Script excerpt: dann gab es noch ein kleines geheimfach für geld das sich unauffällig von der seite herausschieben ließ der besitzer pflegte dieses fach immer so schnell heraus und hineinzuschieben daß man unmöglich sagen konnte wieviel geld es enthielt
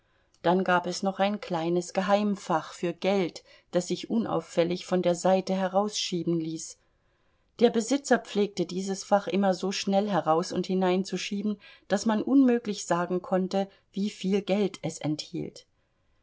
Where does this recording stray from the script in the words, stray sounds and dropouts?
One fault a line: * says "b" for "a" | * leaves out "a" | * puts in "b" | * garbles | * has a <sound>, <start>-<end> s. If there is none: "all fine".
all fine